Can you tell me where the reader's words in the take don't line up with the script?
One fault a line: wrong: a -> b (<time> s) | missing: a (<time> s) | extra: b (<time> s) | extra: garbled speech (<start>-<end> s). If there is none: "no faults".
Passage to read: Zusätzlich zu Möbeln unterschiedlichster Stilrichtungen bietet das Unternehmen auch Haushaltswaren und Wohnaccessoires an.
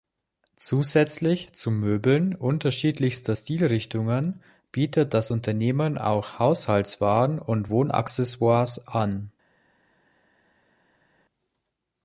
no faults